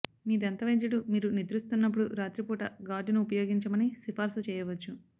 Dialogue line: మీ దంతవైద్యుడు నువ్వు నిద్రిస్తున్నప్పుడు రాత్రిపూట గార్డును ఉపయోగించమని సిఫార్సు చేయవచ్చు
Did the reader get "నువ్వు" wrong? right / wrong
wrong